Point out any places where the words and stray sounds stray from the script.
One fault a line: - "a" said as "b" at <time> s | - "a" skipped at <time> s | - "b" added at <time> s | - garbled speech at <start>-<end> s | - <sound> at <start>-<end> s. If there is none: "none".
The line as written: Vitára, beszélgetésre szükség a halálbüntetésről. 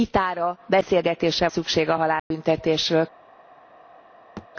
- dropout at 2.2-2.3 s
- thud at 4.4-4.5 s